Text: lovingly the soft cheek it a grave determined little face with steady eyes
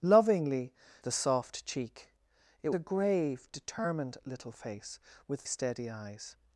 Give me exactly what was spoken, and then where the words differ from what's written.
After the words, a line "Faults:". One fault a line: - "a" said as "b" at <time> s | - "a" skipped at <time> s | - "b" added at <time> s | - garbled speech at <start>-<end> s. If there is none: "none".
lovingly the soft cheek it a grave determined little face with steady eyes
Faults:
none